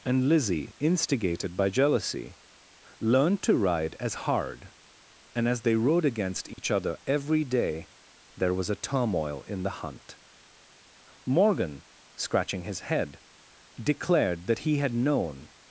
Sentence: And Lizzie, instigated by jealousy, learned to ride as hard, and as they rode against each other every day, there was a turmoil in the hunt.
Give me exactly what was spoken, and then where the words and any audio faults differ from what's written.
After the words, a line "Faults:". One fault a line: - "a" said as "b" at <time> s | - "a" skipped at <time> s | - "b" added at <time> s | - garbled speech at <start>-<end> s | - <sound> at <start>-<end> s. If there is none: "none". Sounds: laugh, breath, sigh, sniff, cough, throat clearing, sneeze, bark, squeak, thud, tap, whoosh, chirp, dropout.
And Lizzie, instigated by jealousy, learned to ride as hard, and as they rode against each other every day, there was a turmoil in the hunt. Morgan, scratching his head, declared that he had known
Faults:
- dropout at 6.5-6.6 s
- "Morgan scratching his head declared that he had known" added at 11.2 s